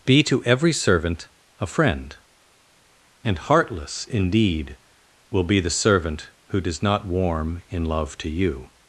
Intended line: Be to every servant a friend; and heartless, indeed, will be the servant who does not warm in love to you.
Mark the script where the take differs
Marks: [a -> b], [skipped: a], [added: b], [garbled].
Be to every servant a friend; and heartless, indeed, will be the servant who does not warm in love to you.